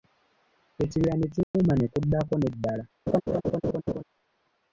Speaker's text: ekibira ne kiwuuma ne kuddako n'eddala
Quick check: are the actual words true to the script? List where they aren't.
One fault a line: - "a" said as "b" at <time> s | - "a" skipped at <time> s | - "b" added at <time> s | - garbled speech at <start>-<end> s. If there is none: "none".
none